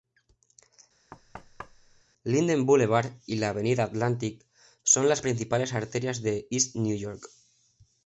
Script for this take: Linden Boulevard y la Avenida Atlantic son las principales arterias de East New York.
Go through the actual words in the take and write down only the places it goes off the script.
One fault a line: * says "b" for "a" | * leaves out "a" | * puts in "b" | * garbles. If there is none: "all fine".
all fine